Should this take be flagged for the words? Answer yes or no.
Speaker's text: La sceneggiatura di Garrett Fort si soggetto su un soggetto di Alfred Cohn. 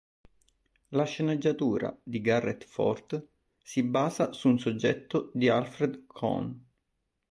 yes